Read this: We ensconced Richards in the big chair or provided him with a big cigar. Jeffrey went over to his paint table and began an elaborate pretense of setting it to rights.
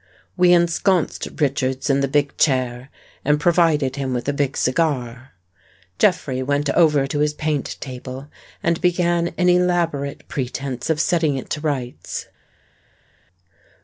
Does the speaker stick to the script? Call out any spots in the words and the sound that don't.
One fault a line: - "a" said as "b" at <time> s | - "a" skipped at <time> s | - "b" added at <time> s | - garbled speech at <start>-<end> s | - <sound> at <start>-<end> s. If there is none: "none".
- "or" said as "and" at 3.2 s